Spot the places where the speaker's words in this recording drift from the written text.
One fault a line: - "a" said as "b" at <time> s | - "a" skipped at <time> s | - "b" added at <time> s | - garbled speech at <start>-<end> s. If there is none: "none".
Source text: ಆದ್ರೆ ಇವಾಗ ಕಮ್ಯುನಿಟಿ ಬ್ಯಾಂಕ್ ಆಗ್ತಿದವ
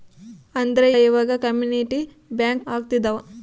none